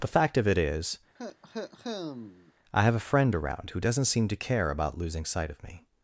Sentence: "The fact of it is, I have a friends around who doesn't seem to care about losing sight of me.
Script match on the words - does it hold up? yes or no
no